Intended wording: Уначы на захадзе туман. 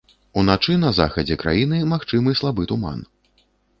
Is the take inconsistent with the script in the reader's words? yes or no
yes